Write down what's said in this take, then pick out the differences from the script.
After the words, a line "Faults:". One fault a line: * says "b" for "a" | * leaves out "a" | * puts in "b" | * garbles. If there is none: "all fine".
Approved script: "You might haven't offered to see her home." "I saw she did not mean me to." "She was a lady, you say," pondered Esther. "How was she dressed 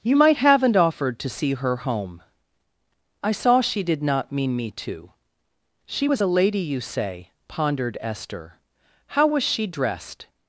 "You might haven't offered to see her home." "I saw she did not mean me to." "She was a lady, you say," pondered Esther. "How was she dressed
Faults:
all fine